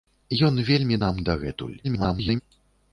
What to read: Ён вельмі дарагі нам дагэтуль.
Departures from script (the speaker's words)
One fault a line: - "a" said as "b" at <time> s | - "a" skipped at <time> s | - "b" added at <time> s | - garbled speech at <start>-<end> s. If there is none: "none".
- "дарагі" skipped at 1.0 s
- garbled speech at 1.8-2.4 s